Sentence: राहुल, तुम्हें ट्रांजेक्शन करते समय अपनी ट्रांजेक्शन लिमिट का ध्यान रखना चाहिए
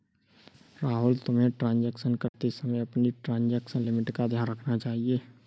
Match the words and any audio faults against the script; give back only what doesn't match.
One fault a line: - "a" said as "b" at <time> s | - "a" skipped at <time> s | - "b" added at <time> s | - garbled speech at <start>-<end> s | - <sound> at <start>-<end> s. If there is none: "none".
- dropout at 2.3-2.3 s